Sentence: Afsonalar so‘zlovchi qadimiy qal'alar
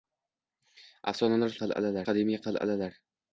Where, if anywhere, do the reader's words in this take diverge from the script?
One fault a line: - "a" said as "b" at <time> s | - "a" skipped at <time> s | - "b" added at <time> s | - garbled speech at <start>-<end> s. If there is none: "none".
- "so‘zlovchi" said as "qal'alar" at 1.6 s